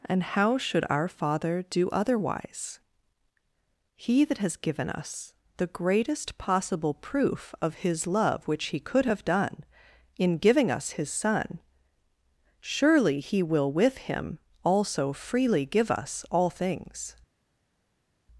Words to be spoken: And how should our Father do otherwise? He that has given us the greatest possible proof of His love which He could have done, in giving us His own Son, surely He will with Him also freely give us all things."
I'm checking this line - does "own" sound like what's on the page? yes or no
no